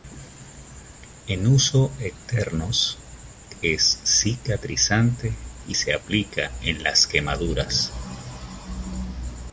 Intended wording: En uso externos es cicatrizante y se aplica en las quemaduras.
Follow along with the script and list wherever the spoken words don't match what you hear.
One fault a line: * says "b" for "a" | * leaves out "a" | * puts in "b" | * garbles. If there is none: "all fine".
all fine